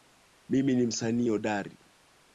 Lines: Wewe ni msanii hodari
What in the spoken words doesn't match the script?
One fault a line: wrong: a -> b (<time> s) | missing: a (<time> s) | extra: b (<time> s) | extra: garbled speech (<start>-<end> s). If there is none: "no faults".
wrong: Wewe -> Mimi (0.5 s)